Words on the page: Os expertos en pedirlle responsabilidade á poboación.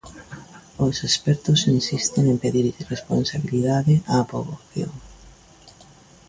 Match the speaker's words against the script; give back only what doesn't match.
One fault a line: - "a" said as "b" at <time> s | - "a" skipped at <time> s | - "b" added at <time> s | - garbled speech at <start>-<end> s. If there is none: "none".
- "insisten" added at 1.8 s